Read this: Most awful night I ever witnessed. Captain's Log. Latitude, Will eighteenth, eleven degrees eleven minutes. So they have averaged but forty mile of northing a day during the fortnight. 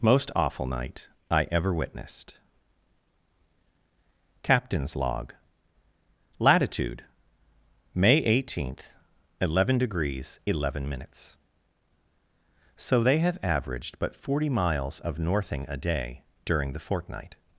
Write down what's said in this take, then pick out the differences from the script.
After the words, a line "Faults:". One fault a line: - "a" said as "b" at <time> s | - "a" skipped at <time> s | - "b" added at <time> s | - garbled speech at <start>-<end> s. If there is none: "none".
Most awful night I ever witnessed. Captain's Log. Latitude, May eighteenth, eleven degrees eleven minutes. So they have averaged but forty miles of northing a day during the fortnight.
Faults:
- "Will" said as "May" at 7.9 s
- "mile" said as "miles" at 14.5 s